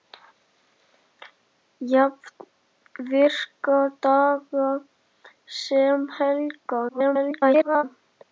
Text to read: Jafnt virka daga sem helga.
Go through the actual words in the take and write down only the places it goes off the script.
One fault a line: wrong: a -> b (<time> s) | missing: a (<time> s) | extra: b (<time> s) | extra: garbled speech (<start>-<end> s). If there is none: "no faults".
extra: garbled speech (6.9-7.8 s)